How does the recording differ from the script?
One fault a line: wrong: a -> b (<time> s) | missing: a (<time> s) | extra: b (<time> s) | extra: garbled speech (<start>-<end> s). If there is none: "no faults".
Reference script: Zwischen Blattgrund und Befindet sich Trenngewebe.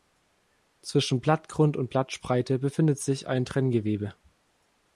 extra: Blattspreite (1.9 s)
extra: ein (3.3 s)